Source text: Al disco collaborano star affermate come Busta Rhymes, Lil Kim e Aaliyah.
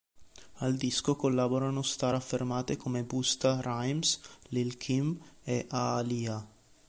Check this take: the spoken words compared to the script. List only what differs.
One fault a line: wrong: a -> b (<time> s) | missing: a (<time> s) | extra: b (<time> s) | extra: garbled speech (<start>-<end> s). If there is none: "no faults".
no faults